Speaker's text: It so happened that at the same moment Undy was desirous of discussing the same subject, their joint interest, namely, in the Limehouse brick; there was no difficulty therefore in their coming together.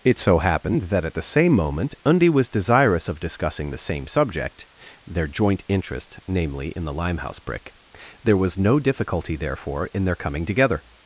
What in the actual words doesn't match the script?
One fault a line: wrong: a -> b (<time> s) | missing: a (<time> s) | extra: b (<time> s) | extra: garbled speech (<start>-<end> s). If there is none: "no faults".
no faults